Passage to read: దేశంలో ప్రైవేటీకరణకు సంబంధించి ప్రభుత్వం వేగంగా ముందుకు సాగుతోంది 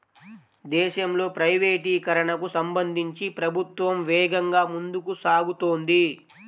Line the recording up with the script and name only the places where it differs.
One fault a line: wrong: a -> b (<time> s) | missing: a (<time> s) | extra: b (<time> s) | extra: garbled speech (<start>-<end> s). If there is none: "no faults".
no faults